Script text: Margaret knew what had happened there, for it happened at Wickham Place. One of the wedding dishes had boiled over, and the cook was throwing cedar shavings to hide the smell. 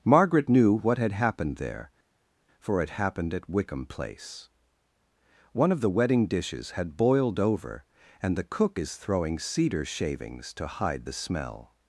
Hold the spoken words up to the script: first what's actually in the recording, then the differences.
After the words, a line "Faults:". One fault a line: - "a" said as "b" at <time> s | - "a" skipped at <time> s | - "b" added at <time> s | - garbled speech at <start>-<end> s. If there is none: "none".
Margaret knew what had happened there, for it happened at Wickham Place. One of the wedding dishes had boiled over, and the cook is throwing cedar shavings to hide the smell.
Faults:
- "was" said as "is" at 8.8 s